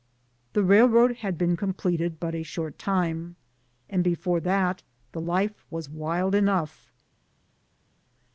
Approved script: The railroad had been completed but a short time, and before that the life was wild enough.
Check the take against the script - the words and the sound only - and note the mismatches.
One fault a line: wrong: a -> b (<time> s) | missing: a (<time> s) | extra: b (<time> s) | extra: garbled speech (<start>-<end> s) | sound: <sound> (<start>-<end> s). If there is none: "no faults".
no faults